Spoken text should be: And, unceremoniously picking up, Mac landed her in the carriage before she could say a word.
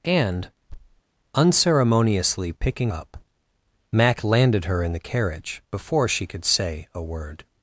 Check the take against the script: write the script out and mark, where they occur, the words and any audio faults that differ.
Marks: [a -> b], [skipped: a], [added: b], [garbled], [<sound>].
And, [thud] unceremoniously picking up, Mac landed her in the carriage before she could say a word.